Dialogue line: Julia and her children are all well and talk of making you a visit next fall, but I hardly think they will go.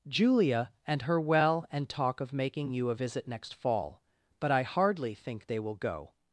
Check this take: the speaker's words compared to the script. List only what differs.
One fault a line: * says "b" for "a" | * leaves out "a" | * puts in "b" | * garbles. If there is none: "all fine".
* leaves out "children are all"